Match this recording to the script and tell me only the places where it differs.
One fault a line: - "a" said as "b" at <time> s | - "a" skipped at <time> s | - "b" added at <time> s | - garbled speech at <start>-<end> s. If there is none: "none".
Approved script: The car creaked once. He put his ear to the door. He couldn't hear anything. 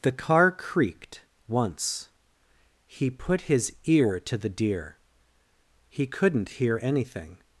- "door" said as "deer" at 4.5 s